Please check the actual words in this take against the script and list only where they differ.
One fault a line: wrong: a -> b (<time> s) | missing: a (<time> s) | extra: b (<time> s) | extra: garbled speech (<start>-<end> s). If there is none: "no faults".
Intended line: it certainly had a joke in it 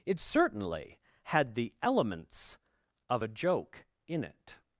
extra: the elements of (1.6 s)